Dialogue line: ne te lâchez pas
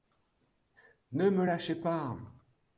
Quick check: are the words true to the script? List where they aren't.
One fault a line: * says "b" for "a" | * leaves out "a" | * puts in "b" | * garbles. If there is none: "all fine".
* says "me" for "te"